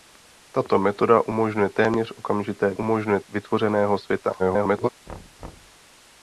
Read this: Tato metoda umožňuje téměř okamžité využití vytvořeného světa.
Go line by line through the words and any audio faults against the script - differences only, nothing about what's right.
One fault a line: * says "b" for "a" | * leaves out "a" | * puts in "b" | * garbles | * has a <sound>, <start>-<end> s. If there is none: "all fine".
* says "umožňuje" for "využití"
* garbles
* has a thud, 5.1-5.8 s